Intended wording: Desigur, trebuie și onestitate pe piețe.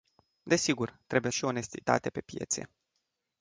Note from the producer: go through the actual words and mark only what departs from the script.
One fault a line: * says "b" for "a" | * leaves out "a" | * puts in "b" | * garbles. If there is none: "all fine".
all fine